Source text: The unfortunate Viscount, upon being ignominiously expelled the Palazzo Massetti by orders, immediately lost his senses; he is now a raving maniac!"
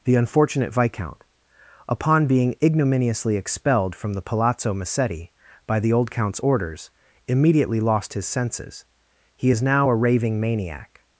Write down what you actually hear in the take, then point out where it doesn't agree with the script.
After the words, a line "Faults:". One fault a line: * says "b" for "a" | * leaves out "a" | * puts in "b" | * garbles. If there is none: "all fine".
The unfortunate Viscount, upon being ignominiously expelled from the Palazzo Massetti by the old Count's orders, immediately lost his senses; he is now a raving maniac!"
Faults:
* puts in "from"
* puts in "the old Count's"